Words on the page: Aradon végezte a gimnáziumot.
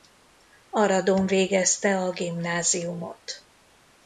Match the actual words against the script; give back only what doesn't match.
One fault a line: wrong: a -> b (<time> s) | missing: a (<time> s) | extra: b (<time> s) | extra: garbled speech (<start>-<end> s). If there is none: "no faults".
no faults